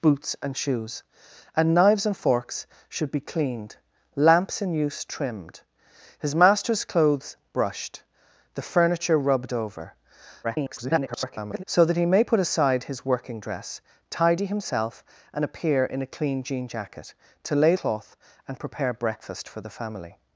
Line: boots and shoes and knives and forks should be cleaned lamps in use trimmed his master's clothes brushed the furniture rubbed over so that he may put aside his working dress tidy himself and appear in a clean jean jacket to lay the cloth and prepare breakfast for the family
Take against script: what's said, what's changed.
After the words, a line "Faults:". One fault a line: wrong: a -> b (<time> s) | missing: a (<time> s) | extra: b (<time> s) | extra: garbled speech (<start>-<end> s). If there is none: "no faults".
boots and shoes and knives and forks should be cleaned lamps in use trimmed his master's clothes brushed the furniture rubbed over [garbled] so that he may put aside his working dress tidy himself and appear in a clean jean jacket to lay cloth and prepare breakfast for the family
Faults:
extra: garbled speech (10.4-11.6 s)
missing: the (17.7 s)